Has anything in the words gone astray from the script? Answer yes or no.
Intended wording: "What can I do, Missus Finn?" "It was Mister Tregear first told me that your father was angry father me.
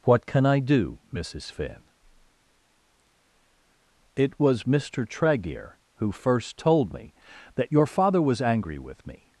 yes